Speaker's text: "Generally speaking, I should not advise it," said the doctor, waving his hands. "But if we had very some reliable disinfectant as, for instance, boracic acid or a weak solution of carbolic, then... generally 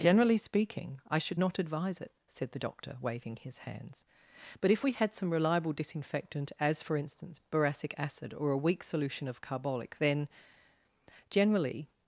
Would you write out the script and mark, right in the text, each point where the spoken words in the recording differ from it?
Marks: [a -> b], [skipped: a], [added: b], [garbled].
"Generally speaking, I should not advise it," said the doctor, waving his hands. "But if we had [skipped: very] some reliable disinfectant as, for instance, boracic acid or a weak solution of carbolic, then... generally